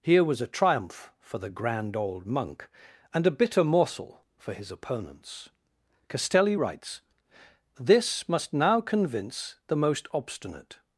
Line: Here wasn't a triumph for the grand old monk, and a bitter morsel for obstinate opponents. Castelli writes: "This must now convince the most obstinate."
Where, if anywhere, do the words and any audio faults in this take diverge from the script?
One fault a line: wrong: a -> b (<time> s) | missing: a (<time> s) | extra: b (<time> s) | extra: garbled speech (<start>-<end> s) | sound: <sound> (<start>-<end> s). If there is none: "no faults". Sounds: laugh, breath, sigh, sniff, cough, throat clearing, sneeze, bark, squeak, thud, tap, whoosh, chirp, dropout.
wrong: wasn't -> was (0.2 s)
wrong: obstinate -> his (4.5 s)